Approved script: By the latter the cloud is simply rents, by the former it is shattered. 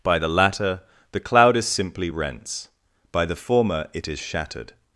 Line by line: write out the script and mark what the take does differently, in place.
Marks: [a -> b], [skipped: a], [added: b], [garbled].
By the latter the cloud is simply rents, by the former it is shattered.